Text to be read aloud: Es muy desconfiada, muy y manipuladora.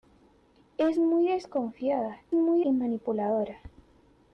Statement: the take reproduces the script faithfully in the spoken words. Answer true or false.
true